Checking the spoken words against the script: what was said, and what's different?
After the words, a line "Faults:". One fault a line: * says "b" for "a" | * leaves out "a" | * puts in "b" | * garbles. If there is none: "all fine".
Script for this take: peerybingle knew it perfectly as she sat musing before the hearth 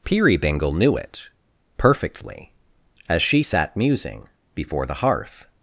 peerybingle knew it perfectly as she sat musing before the hearth
Faults:
all fine